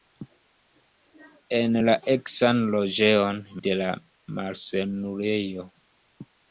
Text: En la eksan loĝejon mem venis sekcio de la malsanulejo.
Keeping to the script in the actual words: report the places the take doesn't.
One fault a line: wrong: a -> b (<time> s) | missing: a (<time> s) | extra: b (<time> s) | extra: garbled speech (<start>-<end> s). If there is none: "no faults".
missing: mem venis sekcio (3.4 s)